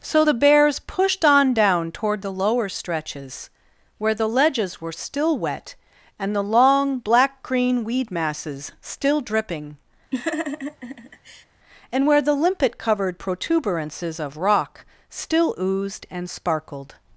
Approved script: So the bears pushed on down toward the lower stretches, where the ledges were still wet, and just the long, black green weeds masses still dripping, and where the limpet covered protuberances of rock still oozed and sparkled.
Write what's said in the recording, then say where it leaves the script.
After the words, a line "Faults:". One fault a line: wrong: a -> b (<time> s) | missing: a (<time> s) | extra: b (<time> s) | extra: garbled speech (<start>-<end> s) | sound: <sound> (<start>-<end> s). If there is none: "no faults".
So the bears pushed on down toward the lower stretches, where the ledges were still wet, and the long, black green weed masses still dripping, and where the limpet covered protuberances of rock still oozed and sparkled.
Faults:
missing: just (6.3 s)
wrong: weeds -> weed (7.8 s)
sound: laugh (10.1-11.5 s)